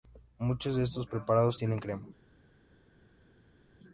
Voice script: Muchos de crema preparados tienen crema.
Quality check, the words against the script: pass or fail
fail